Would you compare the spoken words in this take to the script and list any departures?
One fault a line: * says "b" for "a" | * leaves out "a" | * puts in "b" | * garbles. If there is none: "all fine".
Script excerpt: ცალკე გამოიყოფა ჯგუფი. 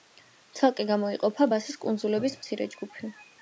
* puts in "ბასის კუნძულების მცირე"